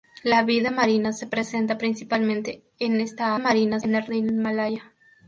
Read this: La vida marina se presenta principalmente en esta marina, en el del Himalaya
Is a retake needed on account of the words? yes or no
no